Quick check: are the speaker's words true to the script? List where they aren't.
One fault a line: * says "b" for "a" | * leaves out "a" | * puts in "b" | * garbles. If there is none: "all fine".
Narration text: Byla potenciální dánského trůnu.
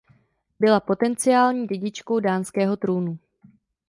* puts in "dědičkou"